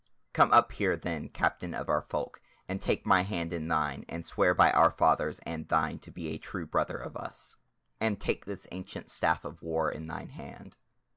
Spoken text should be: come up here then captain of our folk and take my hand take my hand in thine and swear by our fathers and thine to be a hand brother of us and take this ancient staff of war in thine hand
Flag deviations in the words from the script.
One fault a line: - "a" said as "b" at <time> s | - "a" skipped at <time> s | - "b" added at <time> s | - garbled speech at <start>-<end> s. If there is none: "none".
- "take my hand" skipped at 3.5 s
- "hand" said as "true" at 6.4 s